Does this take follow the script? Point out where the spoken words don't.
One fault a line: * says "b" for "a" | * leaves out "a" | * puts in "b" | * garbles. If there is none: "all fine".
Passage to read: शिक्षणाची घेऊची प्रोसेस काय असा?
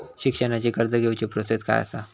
* puts in "कर्ज"